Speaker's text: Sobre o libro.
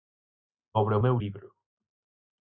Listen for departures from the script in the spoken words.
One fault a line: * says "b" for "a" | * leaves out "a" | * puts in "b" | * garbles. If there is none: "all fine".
* puts in "meu"